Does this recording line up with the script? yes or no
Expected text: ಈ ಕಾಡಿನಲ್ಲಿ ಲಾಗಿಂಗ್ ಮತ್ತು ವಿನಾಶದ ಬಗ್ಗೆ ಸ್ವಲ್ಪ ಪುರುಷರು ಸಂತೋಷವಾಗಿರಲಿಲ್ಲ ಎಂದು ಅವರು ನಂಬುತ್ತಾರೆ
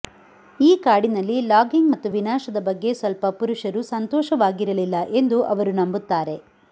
yes